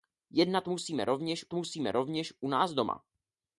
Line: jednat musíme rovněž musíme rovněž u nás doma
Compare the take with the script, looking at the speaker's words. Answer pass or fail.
pass